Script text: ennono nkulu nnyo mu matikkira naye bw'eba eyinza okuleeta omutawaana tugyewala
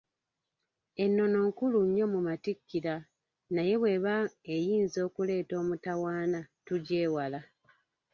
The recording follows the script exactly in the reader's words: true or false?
true